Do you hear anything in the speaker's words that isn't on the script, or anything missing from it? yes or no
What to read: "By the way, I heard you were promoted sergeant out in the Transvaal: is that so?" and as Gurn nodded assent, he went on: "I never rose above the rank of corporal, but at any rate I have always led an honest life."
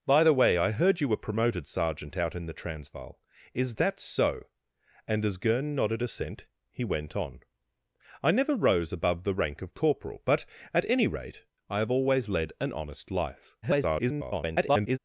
yes